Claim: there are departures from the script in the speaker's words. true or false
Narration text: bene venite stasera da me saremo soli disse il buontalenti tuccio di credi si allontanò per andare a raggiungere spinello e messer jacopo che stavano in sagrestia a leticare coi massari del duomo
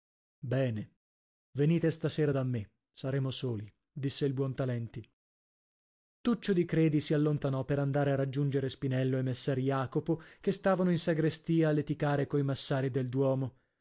false